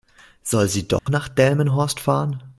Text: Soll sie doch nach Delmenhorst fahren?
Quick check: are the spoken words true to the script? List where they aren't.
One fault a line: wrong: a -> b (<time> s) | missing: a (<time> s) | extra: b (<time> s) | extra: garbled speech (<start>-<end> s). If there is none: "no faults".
no faults